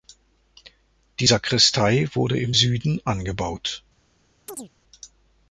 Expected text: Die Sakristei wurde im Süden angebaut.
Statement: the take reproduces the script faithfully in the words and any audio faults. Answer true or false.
false